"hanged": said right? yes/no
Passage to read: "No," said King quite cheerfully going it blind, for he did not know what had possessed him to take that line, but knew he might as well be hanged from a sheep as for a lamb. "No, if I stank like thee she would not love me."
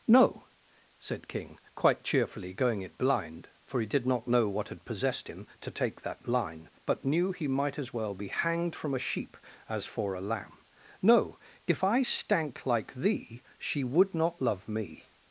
yes